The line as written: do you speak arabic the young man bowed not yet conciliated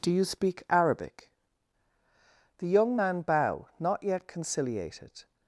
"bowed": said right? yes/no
no